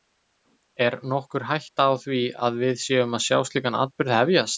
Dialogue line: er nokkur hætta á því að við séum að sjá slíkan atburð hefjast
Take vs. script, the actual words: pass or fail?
pass